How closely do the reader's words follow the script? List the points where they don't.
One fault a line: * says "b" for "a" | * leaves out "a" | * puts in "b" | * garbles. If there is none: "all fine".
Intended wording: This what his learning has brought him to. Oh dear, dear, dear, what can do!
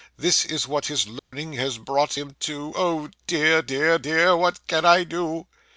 * puts in "is"
* puts in "I"